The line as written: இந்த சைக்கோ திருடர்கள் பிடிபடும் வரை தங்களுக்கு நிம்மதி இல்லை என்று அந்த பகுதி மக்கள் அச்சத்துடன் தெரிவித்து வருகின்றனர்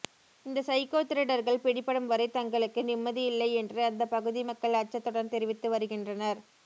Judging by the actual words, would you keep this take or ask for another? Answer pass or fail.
pass